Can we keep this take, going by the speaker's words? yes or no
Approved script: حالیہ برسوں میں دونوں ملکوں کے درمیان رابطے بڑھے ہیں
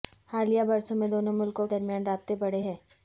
no